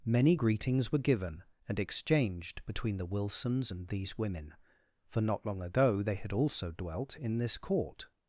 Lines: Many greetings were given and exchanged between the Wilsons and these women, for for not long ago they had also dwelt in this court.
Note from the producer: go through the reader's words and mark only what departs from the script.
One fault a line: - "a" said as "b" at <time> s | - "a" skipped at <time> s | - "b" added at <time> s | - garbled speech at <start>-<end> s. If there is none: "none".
- "for" skipped at 5.2 s